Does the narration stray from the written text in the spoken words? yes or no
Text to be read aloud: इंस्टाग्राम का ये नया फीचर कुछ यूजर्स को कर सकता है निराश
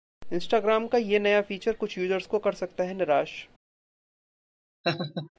no